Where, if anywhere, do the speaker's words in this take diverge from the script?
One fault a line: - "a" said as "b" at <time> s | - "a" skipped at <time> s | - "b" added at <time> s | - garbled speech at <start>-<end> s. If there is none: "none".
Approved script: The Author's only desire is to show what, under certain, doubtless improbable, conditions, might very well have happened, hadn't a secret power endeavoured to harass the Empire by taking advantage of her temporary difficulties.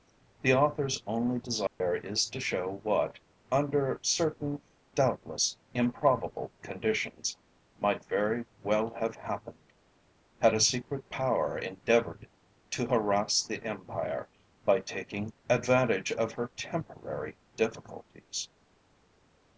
- "hadn't" said as "had" at 10.4 s